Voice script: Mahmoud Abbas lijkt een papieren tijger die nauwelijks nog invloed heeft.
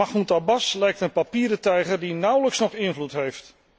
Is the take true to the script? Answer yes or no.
yes